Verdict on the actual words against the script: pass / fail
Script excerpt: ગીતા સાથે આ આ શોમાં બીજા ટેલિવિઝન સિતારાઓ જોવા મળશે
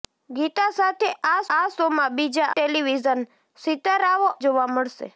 pass